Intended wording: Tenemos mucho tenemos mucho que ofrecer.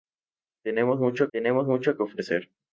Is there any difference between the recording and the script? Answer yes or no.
no